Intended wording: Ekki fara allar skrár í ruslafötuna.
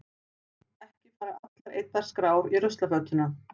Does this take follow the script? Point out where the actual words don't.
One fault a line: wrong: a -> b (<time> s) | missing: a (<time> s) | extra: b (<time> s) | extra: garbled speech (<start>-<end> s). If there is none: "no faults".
extra: eyddar (1.8 s)